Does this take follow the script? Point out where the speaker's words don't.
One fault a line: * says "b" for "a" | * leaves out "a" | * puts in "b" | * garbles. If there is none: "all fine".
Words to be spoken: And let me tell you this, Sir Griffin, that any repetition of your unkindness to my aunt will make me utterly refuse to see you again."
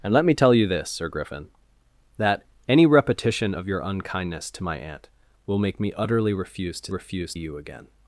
* says "refuse" for "see"